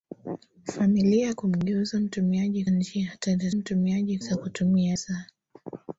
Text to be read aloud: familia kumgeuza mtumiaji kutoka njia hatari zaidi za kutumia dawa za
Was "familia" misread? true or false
false